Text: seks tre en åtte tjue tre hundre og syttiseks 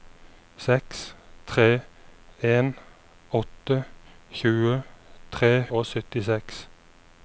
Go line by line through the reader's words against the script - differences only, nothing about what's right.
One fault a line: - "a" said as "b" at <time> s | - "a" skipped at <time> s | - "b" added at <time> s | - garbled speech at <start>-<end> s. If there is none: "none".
- "hundre" skipped at 5.5 s